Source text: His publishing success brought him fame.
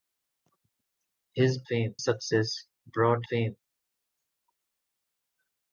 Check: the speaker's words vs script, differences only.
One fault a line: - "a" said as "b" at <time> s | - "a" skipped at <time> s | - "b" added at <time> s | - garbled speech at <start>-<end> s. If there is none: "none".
- "publishing" said as "fame" at 1.7 s
- "him" skipped at 3.3 s